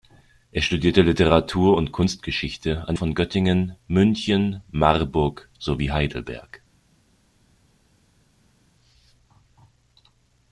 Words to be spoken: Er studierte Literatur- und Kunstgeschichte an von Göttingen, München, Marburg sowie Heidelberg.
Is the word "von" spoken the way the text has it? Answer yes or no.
yes